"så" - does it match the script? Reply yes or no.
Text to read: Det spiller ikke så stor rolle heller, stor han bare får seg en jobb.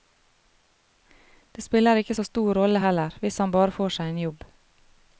yes